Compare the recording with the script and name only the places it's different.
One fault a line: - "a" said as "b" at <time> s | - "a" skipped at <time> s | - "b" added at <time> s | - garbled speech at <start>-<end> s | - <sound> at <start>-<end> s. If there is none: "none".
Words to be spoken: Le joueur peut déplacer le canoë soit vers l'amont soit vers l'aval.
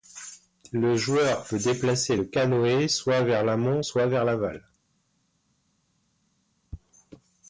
none